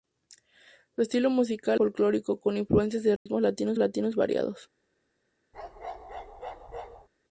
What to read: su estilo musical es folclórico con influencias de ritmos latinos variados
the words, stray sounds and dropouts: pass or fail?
fail